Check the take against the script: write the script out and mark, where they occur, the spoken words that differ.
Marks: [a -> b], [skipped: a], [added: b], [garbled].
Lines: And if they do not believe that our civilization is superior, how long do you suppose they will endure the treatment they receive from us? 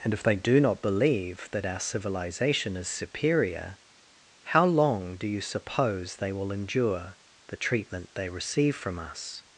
And if they do not believe that our civilization is superior, how long do you suppose they will endure the treatment they receive from us?